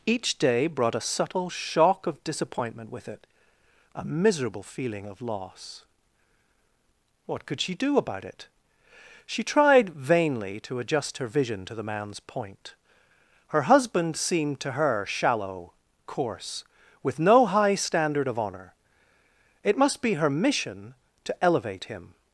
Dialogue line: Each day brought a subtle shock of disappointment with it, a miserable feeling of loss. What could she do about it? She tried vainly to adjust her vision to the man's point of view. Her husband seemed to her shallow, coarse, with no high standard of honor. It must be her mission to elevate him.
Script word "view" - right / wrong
wrong